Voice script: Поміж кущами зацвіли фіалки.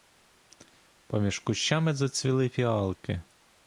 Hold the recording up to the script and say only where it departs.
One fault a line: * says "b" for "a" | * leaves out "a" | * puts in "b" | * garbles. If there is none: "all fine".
all fine